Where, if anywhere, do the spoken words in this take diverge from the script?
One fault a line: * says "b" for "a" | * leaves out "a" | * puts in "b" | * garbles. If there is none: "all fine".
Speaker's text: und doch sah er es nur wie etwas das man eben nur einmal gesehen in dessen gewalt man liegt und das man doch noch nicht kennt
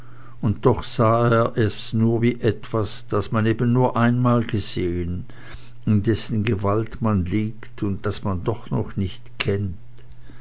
all fine